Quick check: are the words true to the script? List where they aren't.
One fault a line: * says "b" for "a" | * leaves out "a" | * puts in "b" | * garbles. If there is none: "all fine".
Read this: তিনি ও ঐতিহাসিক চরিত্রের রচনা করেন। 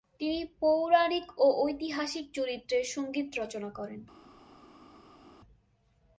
* puts in "পৌরাণিক"
* puts in "সঙ্গীত"